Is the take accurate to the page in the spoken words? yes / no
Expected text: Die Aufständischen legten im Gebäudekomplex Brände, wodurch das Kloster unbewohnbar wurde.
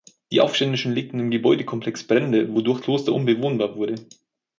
no